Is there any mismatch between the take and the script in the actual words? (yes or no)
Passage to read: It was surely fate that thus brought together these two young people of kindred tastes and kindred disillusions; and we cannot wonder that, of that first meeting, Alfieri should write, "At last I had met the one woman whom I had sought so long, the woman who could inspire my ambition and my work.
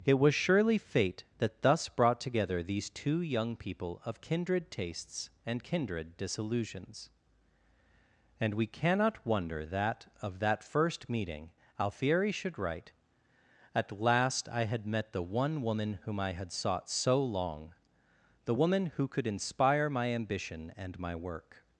no